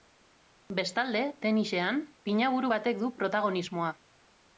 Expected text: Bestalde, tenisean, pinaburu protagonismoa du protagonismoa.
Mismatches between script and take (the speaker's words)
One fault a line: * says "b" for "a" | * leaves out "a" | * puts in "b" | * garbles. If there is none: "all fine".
* says "batek" for "protagonismoa"